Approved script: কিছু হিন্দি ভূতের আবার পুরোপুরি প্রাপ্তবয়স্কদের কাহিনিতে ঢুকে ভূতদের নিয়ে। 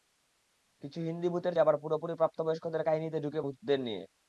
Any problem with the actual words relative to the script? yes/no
no